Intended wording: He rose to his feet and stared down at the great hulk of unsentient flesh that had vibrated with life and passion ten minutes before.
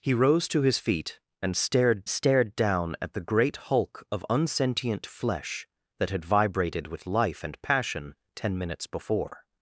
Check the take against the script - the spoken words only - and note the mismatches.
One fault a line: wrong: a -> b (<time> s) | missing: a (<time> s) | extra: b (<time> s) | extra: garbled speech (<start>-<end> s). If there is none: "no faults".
extra: stared (2.1 s)